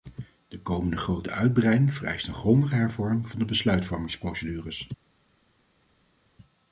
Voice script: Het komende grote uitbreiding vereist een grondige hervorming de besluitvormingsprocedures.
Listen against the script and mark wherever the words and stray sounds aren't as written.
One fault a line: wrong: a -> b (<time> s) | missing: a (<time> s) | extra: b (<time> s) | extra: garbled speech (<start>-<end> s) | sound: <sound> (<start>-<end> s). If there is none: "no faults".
wrong: Het -> De (0.5 s)
extra: van (3.3 s)